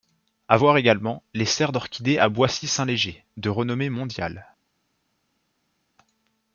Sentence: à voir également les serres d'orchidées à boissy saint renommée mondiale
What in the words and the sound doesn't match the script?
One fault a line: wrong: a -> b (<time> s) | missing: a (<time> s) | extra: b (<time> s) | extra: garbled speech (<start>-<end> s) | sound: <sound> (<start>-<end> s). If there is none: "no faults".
extra: léger de (2.8 s)